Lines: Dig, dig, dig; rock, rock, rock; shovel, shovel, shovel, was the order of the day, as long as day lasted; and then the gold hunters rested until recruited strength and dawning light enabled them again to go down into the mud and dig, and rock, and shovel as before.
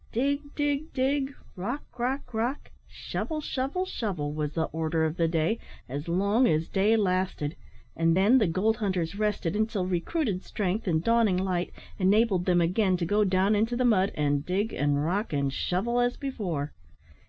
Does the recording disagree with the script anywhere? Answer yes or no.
no